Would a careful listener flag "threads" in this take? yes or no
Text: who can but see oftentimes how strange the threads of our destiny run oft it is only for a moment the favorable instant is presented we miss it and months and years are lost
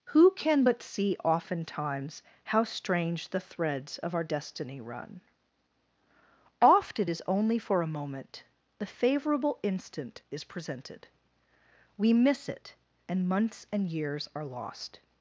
no